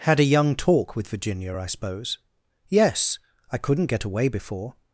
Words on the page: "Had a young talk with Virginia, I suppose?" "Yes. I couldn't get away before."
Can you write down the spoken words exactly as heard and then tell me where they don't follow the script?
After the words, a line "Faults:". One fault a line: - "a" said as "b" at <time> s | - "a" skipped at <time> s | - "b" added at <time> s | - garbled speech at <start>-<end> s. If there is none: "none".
"Had a young talk with Virginia, I suppose?" "Yes. I couldn't get away before."
Faults:
none